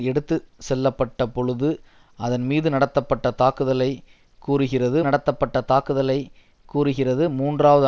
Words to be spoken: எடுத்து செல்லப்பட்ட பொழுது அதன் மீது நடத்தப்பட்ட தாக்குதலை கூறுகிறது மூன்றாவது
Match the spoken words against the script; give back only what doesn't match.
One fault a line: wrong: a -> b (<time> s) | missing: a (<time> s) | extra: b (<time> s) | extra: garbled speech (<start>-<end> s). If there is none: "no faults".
extra: நடத்தப்பட்ட தாக்குதலை கூறுகிறது (5.0 s)